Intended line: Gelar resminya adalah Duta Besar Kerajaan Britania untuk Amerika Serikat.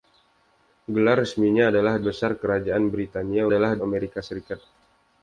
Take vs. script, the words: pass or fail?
fail